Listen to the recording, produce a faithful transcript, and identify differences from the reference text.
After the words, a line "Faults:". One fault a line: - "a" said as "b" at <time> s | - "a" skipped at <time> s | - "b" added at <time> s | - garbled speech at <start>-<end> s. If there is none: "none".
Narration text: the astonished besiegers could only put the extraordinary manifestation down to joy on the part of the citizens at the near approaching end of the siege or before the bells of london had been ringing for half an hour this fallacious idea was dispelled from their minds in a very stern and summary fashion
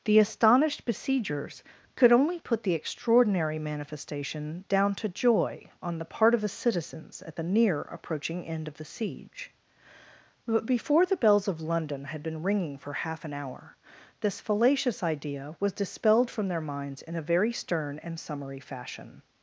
the astonished besiegers could only put the extraordinary manifestation down to joy on the part of the citizens at the near approaching end of the siege but before the bells of london had been ringing for half an hour this fallacious idea was dispelled from their minds in a very stern and summary fashion
Faults:
- "or" said as "but" at 10.5 s